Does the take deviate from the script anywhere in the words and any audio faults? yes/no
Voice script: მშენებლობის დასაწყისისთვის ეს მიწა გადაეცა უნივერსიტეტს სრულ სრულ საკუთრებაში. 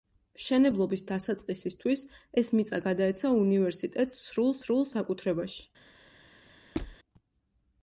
yes